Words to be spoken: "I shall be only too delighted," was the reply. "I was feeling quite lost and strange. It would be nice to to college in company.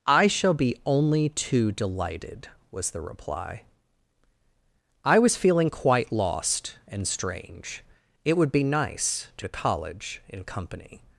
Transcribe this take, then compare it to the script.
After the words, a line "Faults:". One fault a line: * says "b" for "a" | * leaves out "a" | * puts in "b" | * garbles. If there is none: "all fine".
"I shall be only too delighted," was the reply. "I was feeling quite lost and strange. It would be nice to to college in company.
Faults:
all fine